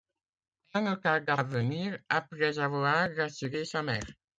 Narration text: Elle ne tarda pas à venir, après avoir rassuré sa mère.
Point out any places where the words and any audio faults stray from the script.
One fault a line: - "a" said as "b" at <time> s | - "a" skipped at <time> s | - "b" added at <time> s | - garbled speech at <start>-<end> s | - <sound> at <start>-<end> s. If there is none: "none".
- "pas" skipped at 1.4 s